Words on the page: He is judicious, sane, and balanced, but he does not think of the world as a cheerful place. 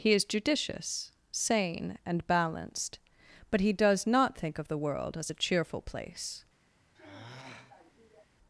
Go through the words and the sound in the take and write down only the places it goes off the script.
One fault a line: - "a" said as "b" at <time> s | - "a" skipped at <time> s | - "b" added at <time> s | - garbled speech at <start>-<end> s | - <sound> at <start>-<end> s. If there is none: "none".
- sigh at 7.0-8.3 s